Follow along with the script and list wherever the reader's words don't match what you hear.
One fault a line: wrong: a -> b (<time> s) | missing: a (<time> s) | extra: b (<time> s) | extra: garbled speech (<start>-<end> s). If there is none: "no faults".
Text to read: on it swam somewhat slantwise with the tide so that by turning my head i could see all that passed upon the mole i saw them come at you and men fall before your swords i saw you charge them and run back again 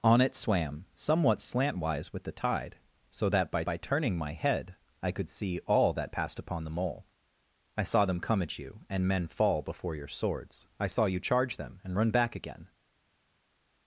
extra: by (3.6 s)